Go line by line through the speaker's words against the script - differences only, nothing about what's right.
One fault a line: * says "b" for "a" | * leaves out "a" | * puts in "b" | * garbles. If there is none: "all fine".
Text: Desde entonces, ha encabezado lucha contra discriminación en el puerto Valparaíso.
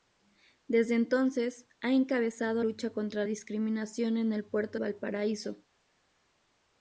all fine